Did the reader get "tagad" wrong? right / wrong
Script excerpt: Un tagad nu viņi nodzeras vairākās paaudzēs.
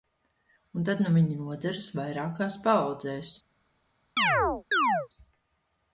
wrong